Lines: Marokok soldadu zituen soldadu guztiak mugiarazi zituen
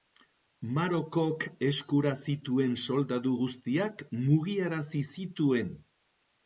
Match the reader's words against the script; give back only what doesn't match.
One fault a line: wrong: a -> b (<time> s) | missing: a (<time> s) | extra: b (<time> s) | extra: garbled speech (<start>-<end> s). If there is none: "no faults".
wrong: soldadu -> eskura (1.7 s)